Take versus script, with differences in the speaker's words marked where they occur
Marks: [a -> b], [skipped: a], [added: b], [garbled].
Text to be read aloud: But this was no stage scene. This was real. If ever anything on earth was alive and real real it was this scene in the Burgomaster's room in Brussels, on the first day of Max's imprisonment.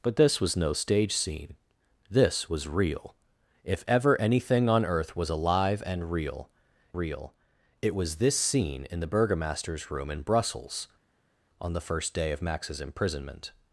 But this was no stage scene. This was real. If ever anything on earth was alive and real real it was this scene in the Burgomaster's room in Brussels, on the first day of Max's imprisonment.